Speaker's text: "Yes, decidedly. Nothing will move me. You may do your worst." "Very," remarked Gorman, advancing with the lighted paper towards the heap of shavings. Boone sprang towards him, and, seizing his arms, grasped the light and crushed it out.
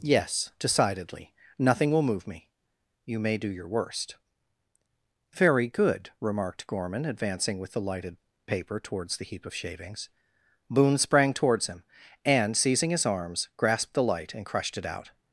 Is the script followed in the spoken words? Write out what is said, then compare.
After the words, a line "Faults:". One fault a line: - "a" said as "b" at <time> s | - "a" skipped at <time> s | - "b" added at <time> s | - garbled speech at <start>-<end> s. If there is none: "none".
"Yes, decidedly. Nothing will move me. You may do your worst." "Very good," remarked Gorman, advancing with the lighted paper towards the heap of shavings. Boone sprang towards him, and, seizing his arms, grasped the light and crushed it out.
Faults:
- "good" added at 5.7 s